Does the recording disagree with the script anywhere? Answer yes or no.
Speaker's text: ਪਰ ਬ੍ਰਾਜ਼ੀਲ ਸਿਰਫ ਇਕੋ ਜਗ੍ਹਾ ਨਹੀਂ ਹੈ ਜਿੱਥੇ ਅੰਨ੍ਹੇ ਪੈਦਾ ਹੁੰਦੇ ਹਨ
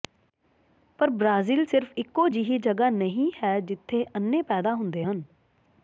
yes